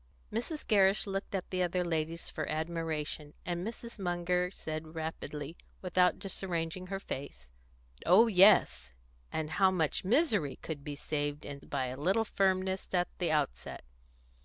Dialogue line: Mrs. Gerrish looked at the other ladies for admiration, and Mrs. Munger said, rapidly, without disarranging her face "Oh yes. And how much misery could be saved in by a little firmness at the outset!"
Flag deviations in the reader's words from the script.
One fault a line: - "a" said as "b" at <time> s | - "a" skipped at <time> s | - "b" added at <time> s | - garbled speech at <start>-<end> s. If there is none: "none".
none